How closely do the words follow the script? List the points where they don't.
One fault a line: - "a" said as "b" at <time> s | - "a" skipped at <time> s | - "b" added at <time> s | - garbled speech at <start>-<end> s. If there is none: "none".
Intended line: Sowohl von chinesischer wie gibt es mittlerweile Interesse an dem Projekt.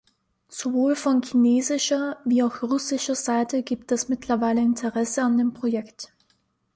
- "auch russischer Seite" added at 2.4 s